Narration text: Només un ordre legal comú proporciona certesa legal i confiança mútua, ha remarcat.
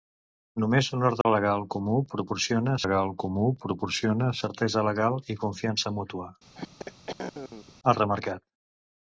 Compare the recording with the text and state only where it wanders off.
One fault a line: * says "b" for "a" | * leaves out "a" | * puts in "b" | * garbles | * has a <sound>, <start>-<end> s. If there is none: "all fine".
* has a dropout, 1.2-1.2 s
* puts in "legal comú proporciona"
* has a throat clearing, 6.5-7.8 s